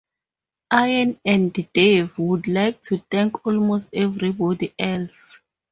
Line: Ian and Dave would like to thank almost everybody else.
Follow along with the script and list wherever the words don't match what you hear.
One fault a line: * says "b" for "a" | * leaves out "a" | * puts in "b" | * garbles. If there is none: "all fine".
all fine